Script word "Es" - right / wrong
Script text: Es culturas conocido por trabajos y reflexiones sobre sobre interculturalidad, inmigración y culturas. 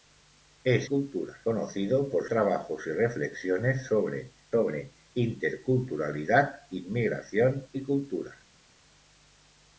right